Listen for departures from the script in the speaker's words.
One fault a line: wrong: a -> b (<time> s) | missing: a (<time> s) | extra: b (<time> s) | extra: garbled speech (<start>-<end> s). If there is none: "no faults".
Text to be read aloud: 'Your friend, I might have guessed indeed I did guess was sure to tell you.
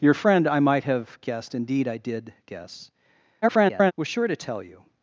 extra: garbled speech (3.4-3.9 s)